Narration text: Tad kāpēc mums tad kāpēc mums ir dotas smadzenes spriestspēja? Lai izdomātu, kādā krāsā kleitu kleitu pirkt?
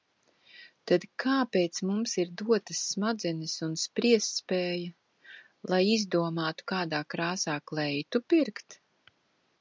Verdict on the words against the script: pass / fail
fail